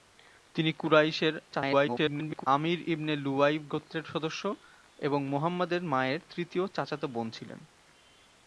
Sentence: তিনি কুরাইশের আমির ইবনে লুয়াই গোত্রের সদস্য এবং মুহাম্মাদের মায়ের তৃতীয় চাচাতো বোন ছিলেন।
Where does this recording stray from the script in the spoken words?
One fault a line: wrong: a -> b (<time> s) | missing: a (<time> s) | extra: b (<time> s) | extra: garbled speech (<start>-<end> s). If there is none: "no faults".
extra: garbled speech (1.5-2.5 s)